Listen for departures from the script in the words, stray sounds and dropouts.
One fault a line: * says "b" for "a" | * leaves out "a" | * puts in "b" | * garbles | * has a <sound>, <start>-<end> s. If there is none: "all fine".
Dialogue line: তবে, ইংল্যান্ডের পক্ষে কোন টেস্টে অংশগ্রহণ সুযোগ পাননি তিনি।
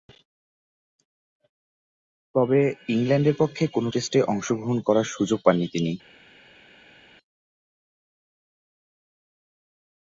* puts in "করার"